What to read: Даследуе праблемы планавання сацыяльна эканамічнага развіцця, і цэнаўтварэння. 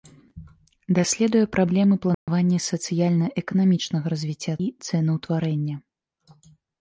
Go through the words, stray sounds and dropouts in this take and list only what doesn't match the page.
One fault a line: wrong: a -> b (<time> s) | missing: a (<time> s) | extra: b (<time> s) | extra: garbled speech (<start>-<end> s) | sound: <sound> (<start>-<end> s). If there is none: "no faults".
sound: dropout (2.1-2.3 s)